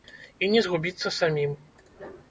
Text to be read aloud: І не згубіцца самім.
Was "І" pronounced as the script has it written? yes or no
yes